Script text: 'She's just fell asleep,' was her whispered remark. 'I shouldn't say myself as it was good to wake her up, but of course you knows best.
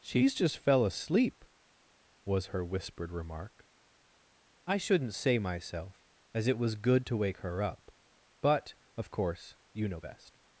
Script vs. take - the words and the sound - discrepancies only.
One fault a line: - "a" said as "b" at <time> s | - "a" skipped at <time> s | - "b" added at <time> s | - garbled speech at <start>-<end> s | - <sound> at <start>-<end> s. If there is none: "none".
- "knows" said as "know" at 9.9 s